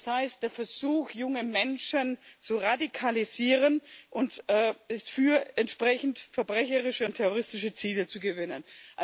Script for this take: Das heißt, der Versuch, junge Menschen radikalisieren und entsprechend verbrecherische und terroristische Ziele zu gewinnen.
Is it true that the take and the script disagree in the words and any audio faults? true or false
true